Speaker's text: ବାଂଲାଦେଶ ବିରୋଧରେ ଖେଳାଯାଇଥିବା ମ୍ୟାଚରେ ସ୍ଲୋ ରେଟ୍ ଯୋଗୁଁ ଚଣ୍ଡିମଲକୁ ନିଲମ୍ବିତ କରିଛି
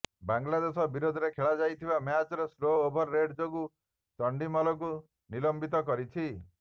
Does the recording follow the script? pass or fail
fail